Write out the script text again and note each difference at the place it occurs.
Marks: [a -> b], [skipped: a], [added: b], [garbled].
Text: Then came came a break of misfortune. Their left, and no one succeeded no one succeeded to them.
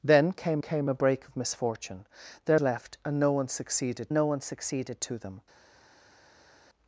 Then came came a break of misfortune. Their left, and no one succeeded no one succeeded to them.